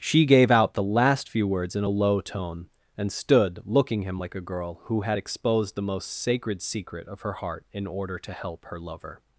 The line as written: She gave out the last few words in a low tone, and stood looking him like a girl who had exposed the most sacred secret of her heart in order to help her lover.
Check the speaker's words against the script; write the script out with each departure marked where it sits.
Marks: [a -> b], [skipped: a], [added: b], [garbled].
She gave out the last few words in a low tone, and stood looking him like a girl who had exposed the most sacred secret of her heart in order to help her lover.